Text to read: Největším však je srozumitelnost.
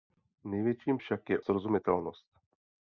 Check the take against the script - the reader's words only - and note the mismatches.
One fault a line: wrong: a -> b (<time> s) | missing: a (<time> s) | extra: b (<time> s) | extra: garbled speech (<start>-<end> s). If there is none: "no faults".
no faults